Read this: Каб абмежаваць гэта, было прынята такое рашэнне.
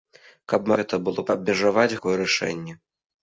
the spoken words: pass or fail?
fail